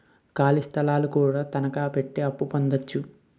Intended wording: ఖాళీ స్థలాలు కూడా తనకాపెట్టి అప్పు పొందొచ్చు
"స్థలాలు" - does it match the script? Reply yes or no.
yes